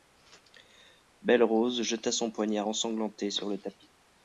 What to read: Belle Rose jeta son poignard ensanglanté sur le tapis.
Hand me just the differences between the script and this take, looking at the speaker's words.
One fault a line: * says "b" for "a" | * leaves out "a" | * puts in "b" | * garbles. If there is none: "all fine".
all fine